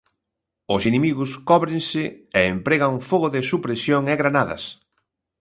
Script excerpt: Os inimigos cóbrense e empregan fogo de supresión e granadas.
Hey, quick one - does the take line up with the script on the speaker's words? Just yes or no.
yes